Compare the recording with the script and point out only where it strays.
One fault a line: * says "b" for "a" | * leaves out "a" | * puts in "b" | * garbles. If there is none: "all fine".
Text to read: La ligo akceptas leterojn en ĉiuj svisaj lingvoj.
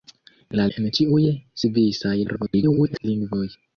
* leaves out "ligo akceptas leterojn"
* garbles